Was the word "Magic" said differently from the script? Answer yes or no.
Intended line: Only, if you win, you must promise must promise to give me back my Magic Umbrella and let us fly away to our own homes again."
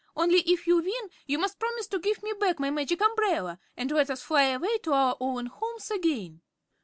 no